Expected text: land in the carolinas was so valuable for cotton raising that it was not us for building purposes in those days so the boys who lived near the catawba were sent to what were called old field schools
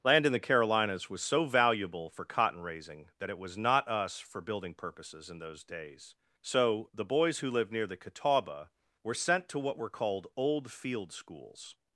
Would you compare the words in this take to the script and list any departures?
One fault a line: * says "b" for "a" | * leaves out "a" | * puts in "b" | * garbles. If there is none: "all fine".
all fine